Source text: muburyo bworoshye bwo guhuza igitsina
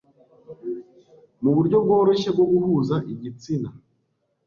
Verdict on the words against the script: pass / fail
pass